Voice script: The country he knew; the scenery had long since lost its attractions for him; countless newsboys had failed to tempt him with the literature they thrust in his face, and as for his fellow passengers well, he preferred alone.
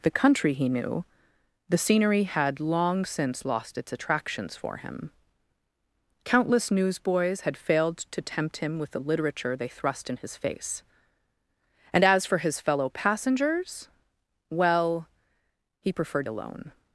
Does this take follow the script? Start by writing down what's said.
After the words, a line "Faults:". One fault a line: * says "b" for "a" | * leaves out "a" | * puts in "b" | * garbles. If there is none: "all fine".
The country he knew; the scenery had long since lost its attractions for him; countless newsboys had failed to tempt him with the literature they thrust in his face, and as for his fellow passengers well, he preferred alone.
Faults:
all fine